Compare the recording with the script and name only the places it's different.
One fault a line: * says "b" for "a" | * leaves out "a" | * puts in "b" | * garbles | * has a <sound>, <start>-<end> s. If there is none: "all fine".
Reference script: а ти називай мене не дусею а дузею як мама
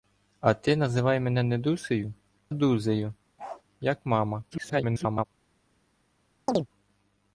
* leaves out "а"
* has a bark, 3.4-3.6 s
* garbles
* has a chirp, 6.5-6.7 s